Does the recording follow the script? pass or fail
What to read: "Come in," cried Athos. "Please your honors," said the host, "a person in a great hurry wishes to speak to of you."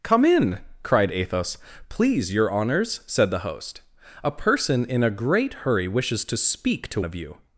pass